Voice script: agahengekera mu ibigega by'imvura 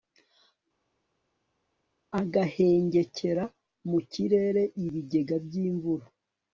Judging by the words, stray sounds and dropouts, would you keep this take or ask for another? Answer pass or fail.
fail